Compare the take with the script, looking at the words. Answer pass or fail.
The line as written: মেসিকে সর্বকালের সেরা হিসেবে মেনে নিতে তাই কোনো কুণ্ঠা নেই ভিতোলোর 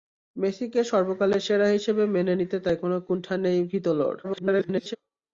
fail